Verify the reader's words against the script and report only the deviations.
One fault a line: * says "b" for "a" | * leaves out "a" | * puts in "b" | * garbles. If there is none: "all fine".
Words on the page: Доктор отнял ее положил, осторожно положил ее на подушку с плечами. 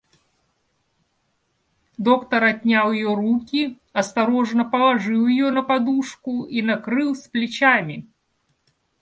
* says "руки" for "положил"
* puts in "и накрыл"